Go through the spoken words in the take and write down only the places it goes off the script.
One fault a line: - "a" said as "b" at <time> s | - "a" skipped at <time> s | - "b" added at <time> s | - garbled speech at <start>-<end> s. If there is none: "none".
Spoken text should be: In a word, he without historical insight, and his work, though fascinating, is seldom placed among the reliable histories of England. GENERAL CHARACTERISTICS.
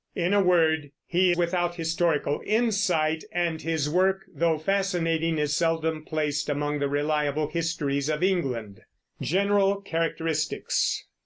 none